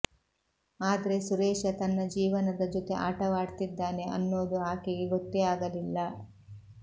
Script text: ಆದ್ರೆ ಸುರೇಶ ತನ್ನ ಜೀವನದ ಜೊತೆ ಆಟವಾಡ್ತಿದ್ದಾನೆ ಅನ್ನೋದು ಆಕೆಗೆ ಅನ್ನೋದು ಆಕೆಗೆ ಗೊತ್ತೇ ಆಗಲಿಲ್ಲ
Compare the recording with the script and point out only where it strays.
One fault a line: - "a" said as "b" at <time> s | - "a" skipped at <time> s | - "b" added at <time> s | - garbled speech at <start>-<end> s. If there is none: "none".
- "ಅನ್ನೋದು ಆಕೆಗೆ" skipped at 5.1 s